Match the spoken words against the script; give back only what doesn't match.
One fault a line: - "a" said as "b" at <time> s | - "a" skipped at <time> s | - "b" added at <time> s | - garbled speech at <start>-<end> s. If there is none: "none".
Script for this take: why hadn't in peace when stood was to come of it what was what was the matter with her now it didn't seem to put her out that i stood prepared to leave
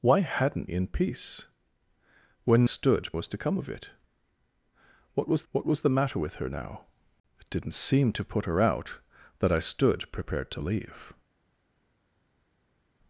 none